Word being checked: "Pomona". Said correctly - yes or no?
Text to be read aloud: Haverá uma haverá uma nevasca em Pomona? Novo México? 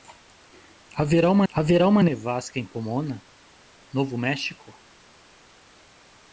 yes